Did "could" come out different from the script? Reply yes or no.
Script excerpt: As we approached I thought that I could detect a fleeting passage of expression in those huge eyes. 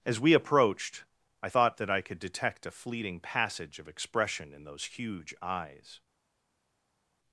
no